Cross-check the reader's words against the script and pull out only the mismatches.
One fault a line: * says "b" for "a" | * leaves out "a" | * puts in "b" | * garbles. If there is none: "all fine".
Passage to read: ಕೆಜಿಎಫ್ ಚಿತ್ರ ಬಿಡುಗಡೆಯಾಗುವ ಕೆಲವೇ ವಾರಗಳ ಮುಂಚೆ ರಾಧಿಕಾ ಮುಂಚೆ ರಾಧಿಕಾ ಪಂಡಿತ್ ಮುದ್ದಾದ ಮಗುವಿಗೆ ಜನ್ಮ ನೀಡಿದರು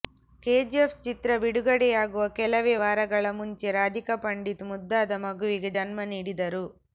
* leaves out "ಮುಂಚೆ ರಾಧಿಕಾ"